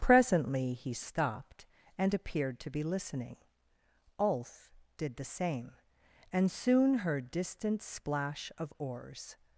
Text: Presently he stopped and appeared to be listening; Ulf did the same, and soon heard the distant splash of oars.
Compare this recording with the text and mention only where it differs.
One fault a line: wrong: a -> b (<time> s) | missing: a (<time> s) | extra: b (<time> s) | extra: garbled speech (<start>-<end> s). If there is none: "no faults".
missing: the (7.3 s)